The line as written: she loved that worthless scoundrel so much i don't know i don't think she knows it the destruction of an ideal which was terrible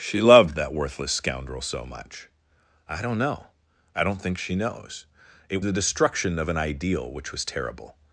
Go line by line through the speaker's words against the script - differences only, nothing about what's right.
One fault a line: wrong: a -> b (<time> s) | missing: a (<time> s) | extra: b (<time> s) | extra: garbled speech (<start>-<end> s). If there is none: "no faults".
no faults